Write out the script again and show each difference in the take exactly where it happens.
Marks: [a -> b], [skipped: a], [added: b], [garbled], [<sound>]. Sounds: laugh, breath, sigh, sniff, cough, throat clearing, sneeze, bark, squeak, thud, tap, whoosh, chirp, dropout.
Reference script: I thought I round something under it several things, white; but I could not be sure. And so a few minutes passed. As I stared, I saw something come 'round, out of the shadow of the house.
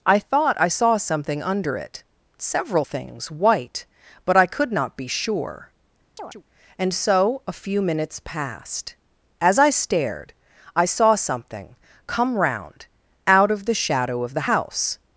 I thought I [round -> saw] something under it several things, white; but I could not be sure. [chirp] And so a few minutes passed. As I stared, I saw something come 'round, out of the shadow of the house.